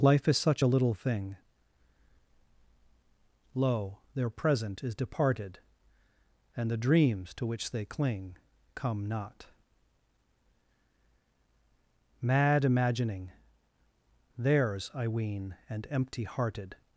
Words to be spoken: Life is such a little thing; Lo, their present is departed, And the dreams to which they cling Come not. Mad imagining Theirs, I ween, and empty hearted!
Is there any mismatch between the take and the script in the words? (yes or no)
no